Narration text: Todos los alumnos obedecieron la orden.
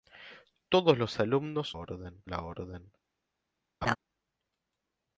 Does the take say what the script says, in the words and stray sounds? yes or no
no